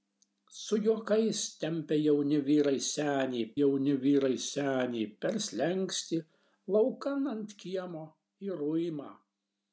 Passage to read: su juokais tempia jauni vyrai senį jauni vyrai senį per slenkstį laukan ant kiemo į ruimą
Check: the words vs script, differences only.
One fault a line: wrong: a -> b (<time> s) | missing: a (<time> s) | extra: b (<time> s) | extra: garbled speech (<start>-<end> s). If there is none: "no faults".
no faults